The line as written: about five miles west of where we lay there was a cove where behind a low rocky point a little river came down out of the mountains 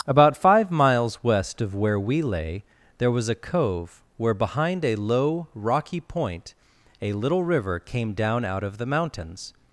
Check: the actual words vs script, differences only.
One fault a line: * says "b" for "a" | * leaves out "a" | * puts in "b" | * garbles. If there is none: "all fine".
all fine